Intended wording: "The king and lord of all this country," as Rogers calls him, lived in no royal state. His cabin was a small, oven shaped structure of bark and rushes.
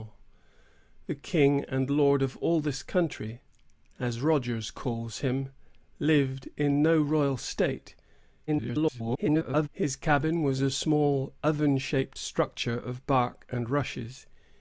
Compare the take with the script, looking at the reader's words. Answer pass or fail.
fail